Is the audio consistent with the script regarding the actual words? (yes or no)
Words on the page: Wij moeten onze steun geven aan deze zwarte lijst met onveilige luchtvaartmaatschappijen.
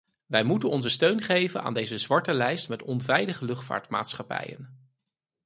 yes